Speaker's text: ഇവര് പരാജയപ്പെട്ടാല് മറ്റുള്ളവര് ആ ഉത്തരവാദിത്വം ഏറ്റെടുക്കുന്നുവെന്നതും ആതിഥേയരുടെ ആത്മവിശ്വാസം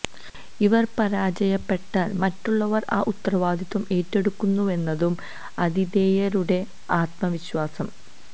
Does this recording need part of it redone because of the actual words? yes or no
no